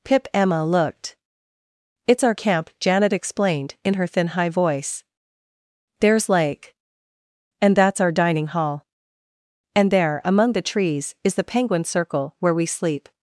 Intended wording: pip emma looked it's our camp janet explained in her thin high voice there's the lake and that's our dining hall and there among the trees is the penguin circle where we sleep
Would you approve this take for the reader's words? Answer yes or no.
no